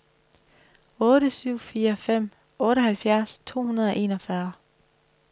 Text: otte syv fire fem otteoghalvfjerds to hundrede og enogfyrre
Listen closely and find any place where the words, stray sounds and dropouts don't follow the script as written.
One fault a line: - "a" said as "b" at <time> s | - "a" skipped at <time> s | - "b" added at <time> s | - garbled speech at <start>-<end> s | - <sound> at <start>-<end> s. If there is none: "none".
none